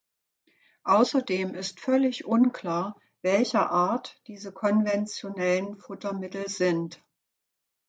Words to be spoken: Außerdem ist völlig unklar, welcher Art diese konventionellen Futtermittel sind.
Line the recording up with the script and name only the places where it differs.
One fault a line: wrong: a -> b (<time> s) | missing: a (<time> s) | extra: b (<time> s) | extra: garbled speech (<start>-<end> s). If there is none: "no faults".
no faults